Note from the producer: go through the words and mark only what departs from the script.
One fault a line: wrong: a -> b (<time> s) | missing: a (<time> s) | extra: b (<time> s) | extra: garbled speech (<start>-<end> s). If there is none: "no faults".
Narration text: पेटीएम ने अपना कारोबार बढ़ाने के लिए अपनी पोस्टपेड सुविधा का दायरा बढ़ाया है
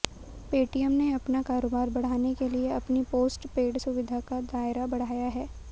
no faults